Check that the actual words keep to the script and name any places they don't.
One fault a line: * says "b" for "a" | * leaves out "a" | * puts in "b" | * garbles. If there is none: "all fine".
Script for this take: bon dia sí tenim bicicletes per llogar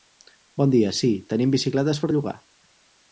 all fine